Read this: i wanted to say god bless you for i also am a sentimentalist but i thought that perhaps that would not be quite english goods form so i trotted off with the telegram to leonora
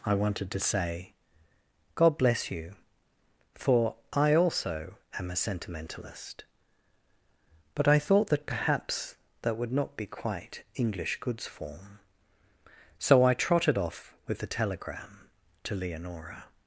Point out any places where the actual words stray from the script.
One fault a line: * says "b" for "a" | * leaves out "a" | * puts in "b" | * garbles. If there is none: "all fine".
all fine